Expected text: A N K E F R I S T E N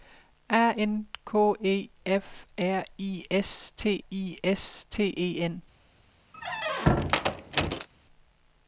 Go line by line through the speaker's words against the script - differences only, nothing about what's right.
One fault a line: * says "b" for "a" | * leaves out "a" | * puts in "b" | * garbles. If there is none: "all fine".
* puts in "I S T"